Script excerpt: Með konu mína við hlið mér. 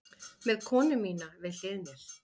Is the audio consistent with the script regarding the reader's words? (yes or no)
yes